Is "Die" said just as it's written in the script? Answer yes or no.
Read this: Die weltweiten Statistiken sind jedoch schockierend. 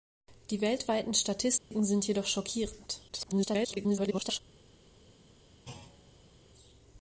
yes